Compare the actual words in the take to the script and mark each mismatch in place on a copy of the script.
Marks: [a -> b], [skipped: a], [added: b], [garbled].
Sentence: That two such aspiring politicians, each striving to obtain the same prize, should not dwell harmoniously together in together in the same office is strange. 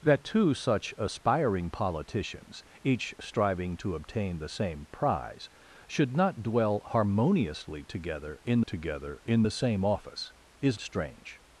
That two such aspiring politicians, each striving to obtain the same prize, should not dwell harmoniously together in together in the same office is strange.